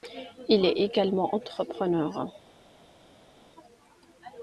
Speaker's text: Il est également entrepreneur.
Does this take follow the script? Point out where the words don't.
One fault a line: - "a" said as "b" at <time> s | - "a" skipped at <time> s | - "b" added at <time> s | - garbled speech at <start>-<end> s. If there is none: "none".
none